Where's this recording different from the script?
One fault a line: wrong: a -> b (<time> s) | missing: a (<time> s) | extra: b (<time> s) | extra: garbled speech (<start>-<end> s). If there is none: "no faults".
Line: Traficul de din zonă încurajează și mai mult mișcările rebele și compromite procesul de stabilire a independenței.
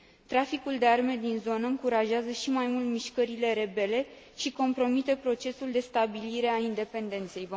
extra: arme (0.8 s)